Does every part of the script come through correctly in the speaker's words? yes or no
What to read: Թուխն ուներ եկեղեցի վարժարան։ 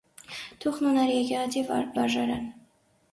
yes